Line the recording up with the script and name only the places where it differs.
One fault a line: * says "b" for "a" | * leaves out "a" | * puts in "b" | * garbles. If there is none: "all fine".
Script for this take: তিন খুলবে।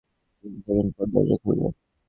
* puts in "সেকেন্ড পর দরজা"